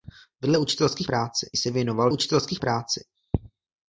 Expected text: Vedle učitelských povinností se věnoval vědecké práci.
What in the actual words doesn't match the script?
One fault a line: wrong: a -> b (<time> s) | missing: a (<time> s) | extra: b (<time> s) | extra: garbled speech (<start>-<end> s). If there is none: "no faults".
wrong: povinností -> práci (1.0 s)
wrong: vědecké -> učitelských (2.1 s)